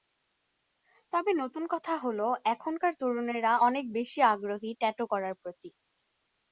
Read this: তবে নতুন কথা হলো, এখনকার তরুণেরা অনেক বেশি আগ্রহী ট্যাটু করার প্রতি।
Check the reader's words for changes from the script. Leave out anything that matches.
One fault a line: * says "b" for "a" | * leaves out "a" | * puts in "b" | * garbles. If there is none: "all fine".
all fine